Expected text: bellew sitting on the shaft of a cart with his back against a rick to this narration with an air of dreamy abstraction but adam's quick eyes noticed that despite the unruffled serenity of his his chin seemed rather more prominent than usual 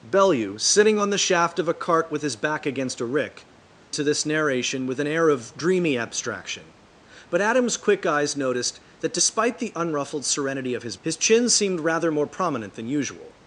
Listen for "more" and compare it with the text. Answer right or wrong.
right